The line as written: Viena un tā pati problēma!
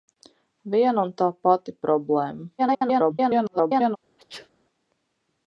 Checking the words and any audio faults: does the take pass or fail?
fail